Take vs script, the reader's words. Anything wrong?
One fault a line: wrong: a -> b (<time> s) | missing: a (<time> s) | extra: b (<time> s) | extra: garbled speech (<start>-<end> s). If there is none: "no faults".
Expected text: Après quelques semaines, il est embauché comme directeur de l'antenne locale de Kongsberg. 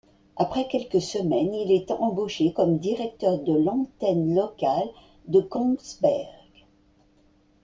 no faults